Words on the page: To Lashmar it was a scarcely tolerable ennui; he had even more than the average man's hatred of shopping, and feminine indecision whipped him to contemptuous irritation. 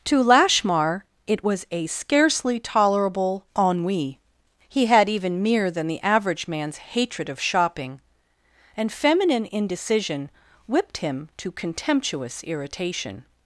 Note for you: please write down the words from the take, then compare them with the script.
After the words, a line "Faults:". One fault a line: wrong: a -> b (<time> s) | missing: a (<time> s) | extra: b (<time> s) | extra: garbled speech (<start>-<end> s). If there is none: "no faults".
To Lashmar it was a scarcely tolerable ennui; he had even mere than the average man's hatred of shopping, and feminine indecision whipped him to contemptuous irritation.
Faults:
wrong: more -> mere (5.4 s)